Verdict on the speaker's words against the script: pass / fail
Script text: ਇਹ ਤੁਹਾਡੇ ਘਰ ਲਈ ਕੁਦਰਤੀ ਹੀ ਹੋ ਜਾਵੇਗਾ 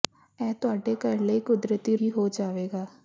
pass